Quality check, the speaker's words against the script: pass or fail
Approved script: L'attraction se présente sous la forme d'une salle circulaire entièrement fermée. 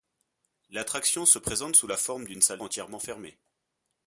fail